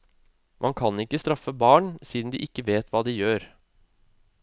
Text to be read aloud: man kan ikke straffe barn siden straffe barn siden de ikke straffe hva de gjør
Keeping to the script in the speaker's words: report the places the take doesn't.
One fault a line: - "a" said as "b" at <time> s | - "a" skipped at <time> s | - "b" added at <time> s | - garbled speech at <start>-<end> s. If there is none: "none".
- "straffe barn siden" skipped at 2.3 s
- "straffe" said as "vet" at 2.7 s